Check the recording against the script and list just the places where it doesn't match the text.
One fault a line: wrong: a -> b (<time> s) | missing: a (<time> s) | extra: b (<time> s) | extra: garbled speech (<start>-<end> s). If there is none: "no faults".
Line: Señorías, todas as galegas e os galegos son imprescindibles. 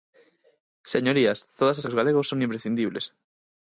missing: galegas (1.9 s)